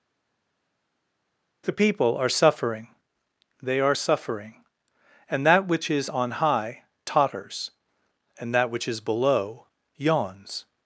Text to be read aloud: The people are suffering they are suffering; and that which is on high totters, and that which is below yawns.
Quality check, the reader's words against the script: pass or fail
pass